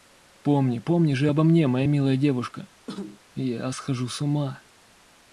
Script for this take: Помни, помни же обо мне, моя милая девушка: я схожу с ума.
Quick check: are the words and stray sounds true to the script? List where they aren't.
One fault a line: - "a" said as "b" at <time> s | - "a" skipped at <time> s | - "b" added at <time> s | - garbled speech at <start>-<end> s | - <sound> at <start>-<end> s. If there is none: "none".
- cough at 2.9-3.2 s